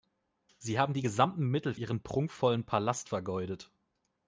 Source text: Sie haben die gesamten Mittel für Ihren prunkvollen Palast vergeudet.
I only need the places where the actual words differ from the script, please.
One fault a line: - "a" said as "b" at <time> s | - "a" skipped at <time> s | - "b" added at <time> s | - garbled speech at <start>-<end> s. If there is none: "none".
- "für" skipped at 1.7 s